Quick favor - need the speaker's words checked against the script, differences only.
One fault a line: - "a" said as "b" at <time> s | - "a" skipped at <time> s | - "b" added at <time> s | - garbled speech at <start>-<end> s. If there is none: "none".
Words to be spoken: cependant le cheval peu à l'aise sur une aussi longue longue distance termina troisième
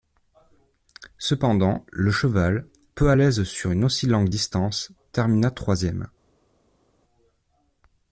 - "longue" skipped at 4.3 s